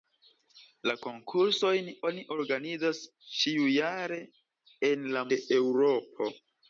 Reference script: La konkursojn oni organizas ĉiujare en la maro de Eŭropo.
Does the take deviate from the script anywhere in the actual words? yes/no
yes